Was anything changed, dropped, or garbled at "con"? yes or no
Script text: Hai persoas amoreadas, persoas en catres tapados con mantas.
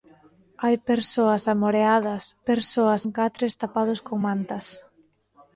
no